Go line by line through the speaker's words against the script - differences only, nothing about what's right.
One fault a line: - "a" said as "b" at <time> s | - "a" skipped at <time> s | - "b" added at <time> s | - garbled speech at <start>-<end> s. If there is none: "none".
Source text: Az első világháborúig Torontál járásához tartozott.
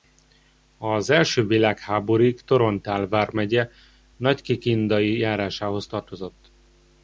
- "vármegye Nagykikindai" added at 3.1 s